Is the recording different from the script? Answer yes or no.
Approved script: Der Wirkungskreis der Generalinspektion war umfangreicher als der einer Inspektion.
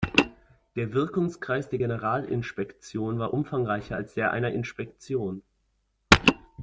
no